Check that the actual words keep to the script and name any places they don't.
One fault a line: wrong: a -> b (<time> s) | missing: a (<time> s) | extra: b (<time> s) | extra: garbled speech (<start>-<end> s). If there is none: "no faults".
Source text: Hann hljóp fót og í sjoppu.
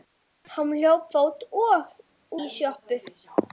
no faults